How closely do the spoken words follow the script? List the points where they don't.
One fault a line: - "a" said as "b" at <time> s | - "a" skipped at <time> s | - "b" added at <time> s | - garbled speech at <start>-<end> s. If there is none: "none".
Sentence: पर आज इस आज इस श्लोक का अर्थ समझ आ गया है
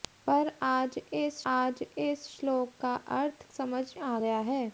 none